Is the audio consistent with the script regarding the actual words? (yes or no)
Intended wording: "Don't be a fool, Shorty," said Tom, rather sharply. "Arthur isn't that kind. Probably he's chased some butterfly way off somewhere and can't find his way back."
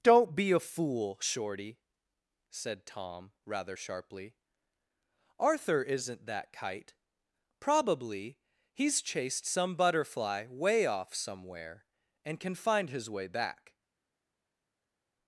no